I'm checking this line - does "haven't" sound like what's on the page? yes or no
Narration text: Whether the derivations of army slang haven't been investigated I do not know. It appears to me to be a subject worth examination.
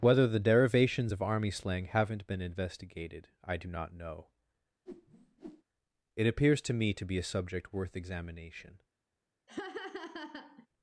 yes